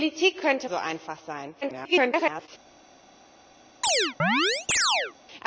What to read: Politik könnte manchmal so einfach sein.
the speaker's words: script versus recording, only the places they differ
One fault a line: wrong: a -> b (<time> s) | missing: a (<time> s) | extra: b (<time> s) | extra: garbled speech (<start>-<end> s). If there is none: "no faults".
missing: manchmal (0.7 s)
extra: garbled speech (1.6-2.5 s)